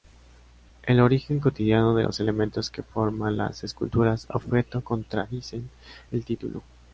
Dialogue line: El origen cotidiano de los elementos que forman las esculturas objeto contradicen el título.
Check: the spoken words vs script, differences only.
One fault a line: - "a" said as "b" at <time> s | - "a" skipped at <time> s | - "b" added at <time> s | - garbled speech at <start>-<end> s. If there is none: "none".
none